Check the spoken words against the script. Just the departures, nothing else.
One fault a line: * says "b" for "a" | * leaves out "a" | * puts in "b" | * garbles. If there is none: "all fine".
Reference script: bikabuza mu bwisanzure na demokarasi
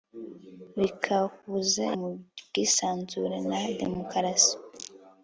all fine